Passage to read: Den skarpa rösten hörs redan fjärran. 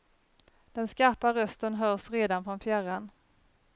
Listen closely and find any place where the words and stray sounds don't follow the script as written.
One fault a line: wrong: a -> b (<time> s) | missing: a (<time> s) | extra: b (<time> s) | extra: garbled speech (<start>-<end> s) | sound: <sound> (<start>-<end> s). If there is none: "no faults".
extra: från (2.4 s)